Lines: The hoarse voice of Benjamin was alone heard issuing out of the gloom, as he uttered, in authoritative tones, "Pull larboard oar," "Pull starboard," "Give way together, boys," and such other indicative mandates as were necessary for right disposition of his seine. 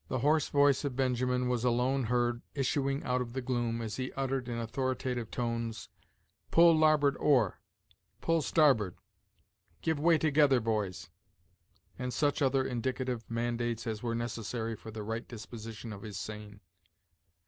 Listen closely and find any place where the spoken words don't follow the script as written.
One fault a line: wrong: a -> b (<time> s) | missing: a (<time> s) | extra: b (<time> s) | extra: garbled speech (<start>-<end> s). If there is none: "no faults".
extra: the (14.9 s)